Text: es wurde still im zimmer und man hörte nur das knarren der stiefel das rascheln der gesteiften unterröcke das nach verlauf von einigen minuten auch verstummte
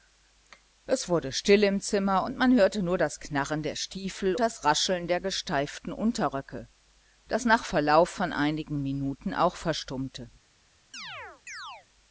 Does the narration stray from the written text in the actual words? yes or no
no